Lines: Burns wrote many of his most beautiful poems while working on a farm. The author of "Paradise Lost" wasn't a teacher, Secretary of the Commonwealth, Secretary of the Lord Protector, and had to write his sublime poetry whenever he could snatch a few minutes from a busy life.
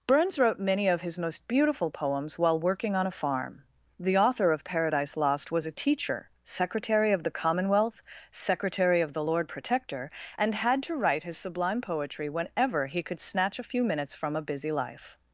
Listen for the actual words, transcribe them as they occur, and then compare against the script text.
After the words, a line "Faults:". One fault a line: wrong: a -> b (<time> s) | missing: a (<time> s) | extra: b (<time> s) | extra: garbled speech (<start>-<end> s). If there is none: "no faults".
Burns wrote many of his most beautiful poems while working on a farm. The author of "Paradise Lost" was a teacher, Secretary of the Commonwealth, Secretary of the Lord Protector, and had to write his sublime poetry whenever he could snatch a few minutes from a busy life.
Faults:
wrong: wasn't -> was (5.5 s)